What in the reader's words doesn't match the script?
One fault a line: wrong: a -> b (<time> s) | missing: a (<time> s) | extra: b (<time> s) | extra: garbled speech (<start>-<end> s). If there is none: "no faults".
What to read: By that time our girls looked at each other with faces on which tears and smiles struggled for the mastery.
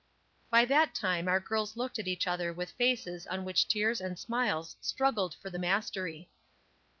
no faults